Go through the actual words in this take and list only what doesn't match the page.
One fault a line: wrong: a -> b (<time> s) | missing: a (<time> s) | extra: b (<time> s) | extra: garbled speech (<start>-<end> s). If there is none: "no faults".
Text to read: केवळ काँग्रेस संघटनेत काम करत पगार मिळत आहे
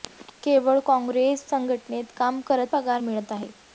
no faults